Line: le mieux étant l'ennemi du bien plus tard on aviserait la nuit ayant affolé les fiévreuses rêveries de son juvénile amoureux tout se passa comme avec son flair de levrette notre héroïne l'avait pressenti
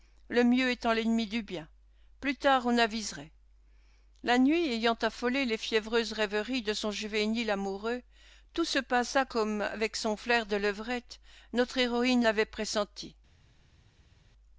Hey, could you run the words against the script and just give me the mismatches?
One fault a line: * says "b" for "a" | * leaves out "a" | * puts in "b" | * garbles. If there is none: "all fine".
all fine